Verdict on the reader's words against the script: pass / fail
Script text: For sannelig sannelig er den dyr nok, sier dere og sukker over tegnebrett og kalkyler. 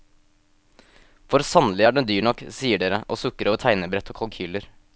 fail